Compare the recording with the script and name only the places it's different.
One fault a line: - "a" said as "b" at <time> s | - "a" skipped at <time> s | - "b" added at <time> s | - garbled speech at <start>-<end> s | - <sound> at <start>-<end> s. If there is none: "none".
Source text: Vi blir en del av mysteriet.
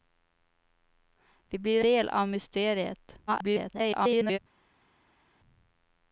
- "en" skipped at 1.8 s
- garbled speech at 3.3-4.4 s